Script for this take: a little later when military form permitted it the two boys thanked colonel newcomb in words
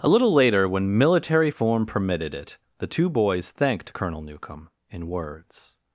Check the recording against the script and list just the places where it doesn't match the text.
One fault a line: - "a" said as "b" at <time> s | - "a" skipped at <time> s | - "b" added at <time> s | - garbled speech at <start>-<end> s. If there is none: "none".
none